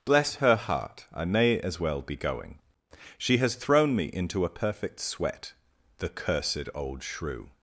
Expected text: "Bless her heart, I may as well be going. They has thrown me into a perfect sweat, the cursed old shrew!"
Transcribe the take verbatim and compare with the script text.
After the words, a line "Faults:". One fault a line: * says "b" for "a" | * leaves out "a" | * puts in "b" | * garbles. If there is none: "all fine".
"Bless her heart, I may as well be going. She has thrown me into a perfect sweat, the cursed old shrew!"
Faults:
* says "She" for "They"